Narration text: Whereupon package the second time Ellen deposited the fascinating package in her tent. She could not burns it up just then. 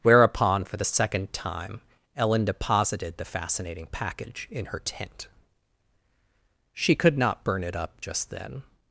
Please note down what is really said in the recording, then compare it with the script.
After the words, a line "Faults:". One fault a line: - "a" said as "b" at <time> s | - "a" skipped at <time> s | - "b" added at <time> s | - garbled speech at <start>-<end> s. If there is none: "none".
Whereupon for the second time Ellen deposited the fascinating package in her tent. She could not burn it up just then.
Faults:
- "package" said as "for" at 0.6 s
- "burns" said as "burn" at 7.4 s